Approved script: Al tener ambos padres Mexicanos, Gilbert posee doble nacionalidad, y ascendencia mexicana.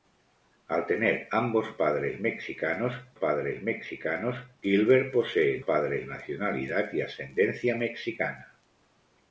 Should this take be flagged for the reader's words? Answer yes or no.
yes